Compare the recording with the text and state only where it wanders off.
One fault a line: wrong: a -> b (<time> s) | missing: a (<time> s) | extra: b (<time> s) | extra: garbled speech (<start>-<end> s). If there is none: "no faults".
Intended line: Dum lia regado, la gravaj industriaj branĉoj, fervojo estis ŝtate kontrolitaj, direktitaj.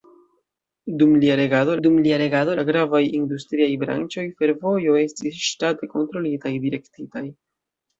extra: dum lia regado (1.8 s)